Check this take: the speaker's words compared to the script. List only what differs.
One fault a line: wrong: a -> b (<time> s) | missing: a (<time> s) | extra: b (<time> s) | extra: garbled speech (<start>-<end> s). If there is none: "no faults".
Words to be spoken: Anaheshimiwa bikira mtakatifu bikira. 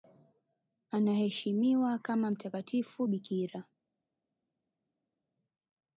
wrong: bikira -> kama (2.0 s)